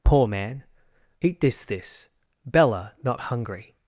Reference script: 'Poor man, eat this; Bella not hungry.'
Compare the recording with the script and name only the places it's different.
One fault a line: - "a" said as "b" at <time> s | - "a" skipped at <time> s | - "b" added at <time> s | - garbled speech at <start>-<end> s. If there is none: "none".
- "this" added at 1.6 s